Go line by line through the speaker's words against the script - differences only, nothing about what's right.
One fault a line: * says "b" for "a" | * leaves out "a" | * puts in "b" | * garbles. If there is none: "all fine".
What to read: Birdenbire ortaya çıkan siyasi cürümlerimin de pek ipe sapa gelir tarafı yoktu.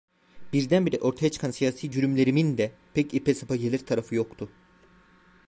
all fine